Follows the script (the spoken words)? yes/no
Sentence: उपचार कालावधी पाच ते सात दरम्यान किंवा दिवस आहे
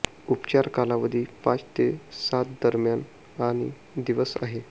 no